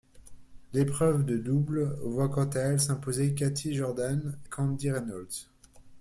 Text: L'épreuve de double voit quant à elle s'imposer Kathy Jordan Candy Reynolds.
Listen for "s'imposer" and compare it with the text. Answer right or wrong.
right